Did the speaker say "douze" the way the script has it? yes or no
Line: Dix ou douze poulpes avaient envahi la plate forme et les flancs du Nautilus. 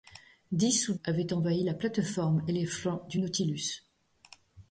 no